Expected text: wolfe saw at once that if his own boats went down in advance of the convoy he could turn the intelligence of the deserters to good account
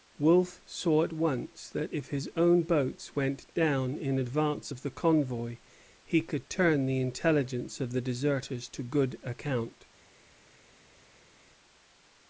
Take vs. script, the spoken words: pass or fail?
pass